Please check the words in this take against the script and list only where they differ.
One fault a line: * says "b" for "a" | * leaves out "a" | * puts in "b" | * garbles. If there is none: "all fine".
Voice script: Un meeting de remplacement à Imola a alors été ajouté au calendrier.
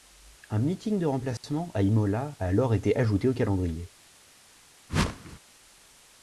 all fine